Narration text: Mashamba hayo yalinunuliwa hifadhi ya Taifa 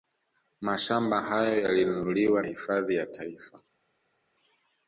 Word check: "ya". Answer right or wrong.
right